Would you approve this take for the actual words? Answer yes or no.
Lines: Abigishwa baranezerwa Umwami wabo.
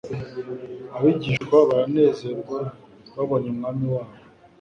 no